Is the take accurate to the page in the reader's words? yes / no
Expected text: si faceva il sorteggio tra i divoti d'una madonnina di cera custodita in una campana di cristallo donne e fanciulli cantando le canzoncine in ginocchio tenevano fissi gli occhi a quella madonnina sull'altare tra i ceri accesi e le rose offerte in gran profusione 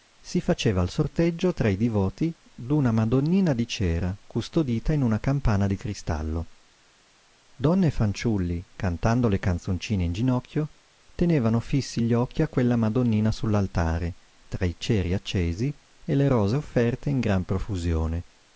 yes